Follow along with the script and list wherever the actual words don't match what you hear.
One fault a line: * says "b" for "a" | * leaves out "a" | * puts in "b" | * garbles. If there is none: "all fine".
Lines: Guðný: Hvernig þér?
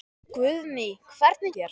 all fine